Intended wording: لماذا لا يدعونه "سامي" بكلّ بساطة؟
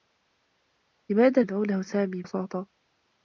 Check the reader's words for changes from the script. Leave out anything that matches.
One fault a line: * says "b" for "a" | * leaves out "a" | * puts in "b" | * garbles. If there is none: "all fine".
* leaves out "لا"
* leaves out "بكلّ"